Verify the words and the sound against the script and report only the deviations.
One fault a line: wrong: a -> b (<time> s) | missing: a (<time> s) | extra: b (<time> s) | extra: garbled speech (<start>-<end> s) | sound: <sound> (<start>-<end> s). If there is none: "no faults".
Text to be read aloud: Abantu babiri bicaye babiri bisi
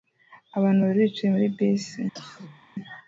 wrong: babiri -> muri (1.3 s)
sound: cough (2.1-2.6 s)